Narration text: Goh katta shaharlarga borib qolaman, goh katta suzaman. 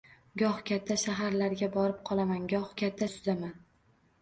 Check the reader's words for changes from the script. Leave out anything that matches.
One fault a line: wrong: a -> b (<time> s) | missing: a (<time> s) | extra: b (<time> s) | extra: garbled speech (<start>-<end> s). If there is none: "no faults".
no faults